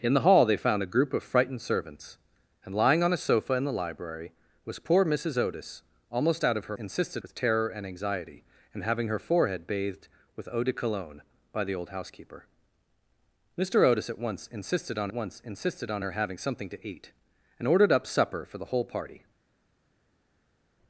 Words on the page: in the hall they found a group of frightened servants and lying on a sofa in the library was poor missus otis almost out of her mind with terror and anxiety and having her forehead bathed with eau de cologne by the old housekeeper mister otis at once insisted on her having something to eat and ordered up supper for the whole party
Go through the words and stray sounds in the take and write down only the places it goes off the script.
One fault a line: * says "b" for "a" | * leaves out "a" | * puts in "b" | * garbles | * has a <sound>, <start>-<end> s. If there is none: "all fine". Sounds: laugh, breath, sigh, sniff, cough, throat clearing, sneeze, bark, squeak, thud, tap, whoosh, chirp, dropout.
* says "insisted" for "mind"
* puts in "once insisted on"